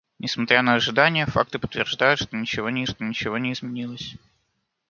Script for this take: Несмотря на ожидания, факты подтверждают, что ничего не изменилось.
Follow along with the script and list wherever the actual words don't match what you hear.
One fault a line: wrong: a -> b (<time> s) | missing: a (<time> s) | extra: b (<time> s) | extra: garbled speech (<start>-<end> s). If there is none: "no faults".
extra: что ничего не (2.9 s)